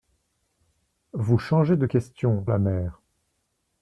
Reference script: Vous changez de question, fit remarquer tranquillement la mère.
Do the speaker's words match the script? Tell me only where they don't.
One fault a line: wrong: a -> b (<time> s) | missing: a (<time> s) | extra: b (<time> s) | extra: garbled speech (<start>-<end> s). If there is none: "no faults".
missing: fit remarquer tranquillement (2.5 s)